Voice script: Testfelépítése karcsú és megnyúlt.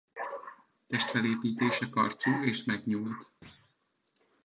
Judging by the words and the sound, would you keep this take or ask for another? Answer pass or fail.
fail